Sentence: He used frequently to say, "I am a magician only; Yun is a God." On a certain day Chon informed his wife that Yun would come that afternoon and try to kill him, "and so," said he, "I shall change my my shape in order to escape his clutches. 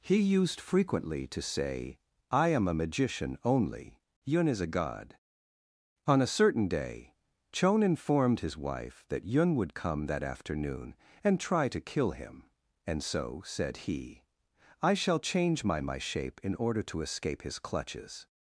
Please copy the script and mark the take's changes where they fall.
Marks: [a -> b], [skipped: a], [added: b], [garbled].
He used frequently to say, "I am a magician only; Yun is a God." On a certain day Chon informed his wife that Yun would come that afternoon and try to kill him, "and so," said he, "I shall change my my shape in order to escape his clutches.